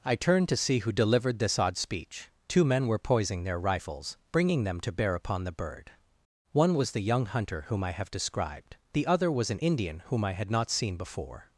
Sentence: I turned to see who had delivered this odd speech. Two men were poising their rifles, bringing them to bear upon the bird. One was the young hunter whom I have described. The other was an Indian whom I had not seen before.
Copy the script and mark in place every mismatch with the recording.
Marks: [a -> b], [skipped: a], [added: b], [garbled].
I turned to see who [skipped: had] delivered this odd speech. Two men were poising their rifles, bringing them to bear upon the bird. One was the young hunter whom I have described. The other was an Indian whom I had not seen before.